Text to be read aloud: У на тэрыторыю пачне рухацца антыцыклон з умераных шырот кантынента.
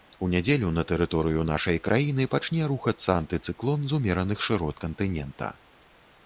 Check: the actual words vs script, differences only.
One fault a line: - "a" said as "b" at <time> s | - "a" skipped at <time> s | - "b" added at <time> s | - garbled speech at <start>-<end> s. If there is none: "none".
- "нядзелю" added at 0.3 s
- "нашай краіны" added at 1.5 s